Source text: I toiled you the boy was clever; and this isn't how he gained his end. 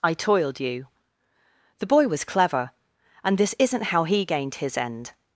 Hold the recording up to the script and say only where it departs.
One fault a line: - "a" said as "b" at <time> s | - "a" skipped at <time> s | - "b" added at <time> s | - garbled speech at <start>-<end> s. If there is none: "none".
none